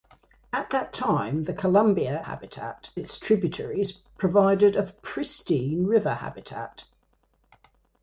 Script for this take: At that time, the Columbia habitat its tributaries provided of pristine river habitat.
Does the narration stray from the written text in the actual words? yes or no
no